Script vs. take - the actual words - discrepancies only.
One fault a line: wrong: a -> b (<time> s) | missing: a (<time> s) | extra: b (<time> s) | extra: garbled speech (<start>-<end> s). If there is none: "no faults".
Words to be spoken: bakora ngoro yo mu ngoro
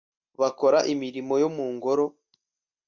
wrong: ngoro -> imirimo (0.9 s)